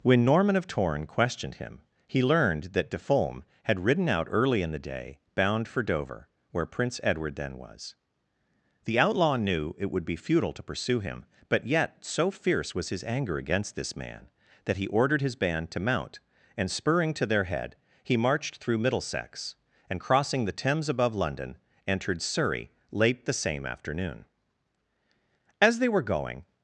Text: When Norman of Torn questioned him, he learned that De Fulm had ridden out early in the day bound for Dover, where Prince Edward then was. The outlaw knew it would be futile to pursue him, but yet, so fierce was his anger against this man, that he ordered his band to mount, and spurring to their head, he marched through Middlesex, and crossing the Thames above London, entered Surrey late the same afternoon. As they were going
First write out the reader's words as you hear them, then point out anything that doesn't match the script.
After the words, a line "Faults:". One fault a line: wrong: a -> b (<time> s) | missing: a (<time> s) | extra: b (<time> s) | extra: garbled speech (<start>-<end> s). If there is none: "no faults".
When Norman of Torn questioned him, he learned that De Fulm had ridden out early in the day bound for Dover, where Prince Edward then was. The outlaw knew it would be futile to pursue him, but yet, so fierce was his anger against this man, that he ordered his band to mount, and spurring to their head, he marched through Middlesex, and crossing the Thames above London, entered Surrey late the same afternoon. As they were going
Faults:
no faults